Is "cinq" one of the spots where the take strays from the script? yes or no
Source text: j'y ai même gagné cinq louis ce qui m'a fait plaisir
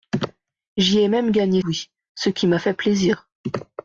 yes